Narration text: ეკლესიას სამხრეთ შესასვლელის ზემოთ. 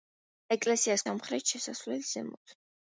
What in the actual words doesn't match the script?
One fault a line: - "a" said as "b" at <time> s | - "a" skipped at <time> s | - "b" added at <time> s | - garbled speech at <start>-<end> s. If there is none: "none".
none